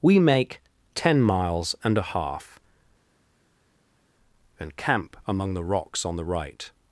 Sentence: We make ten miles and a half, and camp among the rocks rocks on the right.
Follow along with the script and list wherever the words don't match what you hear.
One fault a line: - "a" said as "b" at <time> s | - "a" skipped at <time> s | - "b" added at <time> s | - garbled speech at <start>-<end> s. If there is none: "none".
- "rocks" skipped at 6.0 s